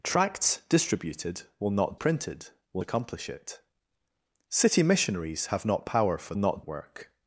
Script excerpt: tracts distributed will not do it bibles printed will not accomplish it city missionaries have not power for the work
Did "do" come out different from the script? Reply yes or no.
yes